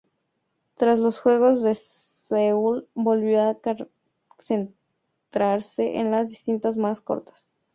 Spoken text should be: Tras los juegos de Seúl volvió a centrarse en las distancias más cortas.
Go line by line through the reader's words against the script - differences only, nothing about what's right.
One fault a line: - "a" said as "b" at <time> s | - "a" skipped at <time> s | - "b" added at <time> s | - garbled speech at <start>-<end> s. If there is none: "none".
none